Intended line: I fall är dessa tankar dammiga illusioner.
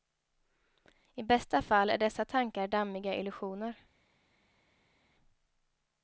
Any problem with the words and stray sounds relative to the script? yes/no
yes